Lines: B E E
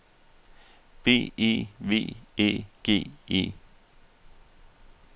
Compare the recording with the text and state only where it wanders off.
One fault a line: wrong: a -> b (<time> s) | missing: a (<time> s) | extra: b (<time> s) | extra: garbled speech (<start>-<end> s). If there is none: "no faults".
extra: V Æ G (1.8 s)